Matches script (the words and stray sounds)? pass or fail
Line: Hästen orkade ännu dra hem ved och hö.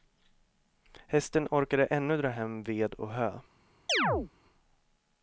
fail